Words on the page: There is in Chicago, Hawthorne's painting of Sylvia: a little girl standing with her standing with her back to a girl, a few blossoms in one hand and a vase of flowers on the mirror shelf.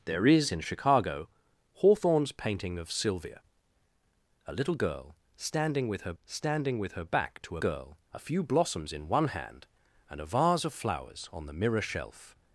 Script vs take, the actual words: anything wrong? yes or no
no